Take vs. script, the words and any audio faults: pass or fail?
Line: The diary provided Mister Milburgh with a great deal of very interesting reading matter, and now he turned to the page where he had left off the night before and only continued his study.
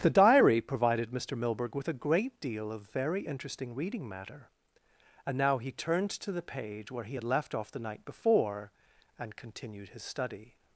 fail